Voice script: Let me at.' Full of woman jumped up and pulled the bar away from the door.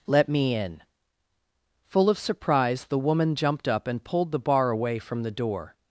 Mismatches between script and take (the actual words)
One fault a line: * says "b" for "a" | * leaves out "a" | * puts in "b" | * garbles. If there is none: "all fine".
* says "in" for "at"
* puts in "surprise the"